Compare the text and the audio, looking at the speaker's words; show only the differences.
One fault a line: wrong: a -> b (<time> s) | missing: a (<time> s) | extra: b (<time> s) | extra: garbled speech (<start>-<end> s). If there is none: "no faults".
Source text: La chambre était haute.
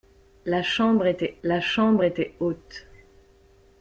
extra: la chambre était (1.4 s)